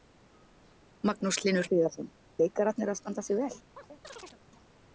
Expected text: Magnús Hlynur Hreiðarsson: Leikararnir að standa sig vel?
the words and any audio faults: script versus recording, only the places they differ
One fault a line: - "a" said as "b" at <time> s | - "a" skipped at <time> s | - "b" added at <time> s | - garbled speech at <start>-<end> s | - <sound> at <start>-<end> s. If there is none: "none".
- chirp at 3.8-4.4 s